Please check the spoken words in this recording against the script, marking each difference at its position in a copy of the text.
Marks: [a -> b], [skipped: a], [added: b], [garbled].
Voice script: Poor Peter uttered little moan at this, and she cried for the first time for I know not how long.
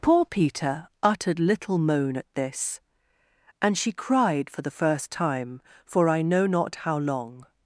Poor Peter uttered little moan at this, and she cried for the first time for I know not how long.